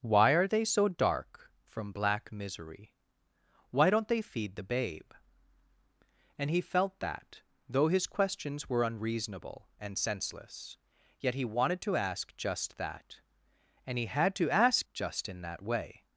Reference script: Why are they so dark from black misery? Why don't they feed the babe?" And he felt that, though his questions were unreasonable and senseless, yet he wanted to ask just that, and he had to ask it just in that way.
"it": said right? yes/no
no